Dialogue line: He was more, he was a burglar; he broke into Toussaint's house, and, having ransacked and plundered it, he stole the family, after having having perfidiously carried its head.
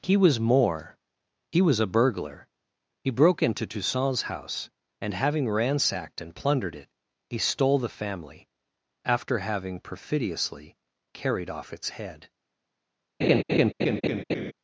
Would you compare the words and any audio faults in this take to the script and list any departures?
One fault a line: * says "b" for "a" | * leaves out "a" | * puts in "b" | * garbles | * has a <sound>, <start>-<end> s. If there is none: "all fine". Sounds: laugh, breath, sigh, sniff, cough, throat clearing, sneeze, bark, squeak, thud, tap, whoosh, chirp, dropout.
* leaves out "having"
* puts in "off"
* has a laugh, 13.2-14.5 s